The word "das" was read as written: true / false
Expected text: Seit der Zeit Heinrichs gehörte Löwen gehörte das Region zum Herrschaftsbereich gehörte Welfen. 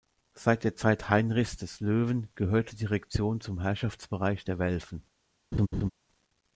false